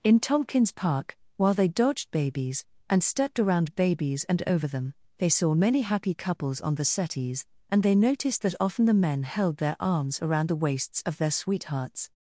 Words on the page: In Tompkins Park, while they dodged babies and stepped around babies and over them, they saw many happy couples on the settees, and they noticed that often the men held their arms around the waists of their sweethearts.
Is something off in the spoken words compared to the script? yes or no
no